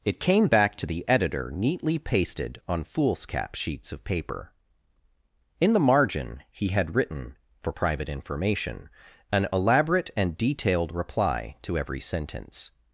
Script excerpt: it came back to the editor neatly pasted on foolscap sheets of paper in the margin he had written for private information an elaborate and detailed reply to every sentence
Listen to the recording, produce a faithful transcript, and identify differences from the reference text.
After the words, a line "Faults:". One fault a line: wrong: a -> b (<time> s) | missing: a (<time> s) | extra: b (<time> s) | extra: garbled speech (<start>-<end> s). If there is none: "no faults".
it came back to the editor neatly pasted on foolscap sheets of paper in the margin he had written for private information an elaborate and detailed reply to every sentence
Faults:
no faults